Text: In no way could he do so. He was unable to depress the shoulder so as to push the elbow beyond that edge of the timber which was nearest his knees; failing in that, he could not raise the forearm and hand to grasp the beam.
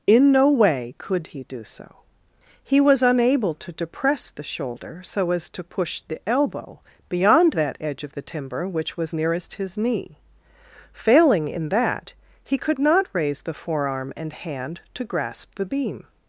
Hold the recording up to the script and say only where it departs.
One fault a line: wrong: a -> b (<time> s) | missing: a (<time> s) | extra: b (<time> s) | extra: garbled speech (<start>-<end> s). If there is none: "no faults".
wrong: knees -> knee (9.8 s)